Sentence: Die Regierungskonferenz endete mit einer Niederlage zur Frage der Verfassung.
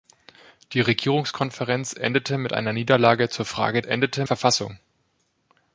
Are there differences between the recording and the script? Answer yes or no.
yes